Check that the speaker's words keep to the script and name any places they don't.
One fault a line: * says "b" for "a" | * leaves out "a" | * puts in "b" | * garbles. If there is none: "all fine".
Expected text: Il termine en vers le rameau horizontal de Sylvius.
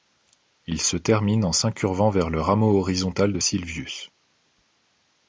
* puts in "se"
* puts in "s'incurvant"